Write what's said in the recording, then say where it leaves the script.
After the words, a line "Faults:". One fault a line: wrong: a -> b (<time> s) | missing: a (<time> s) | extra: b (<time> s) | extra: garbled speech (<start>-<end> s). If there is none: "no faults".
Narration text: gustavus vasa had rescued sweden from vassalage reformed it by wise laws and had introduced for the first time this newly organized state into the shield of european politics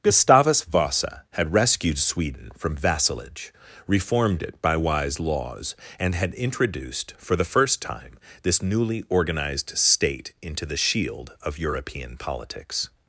gustavus vasa had rescued sweden from vassalage reformed it by wise laws and had introduced for the first time this newly organized state into the shield of european politics
Faults:
no faults